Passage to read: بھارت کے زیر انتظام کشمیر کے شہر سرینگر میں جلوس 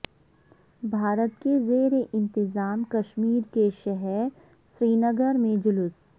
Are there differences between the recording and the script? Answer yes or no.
no